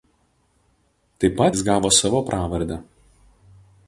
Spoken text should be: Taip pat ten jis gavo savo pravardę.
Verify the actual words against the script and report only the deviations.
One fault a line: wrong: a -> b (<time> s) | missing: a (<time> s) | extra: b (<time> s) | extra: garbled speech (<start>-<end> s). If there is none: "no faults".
missing: ten (1.5 s)